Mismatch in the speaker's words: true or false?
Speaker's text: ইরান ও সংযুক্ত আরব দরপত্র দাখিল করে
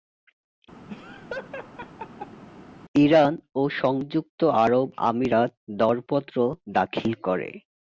true